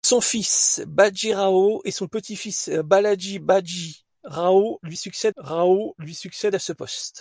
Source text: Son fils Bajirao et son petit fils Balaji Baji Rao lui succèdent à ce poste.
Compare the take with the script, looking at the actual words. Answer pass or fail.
fail